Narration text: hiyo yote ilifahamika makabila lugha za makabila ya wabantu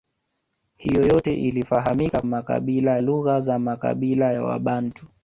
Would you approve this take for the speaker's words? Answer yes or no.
yes